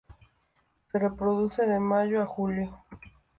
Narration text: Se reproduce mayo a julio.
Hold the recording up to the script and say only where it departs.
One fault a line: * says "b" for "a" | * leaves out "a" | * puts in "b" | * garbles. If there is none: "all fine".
* puts in "de"